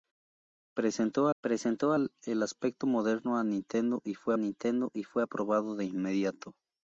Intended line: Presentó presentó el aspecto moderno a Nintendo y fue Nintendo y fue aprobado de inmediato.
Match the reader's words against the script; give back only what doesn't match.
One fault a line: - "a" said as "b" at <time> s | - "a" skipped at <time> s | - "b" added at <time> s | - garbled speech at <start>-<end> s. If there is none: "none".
none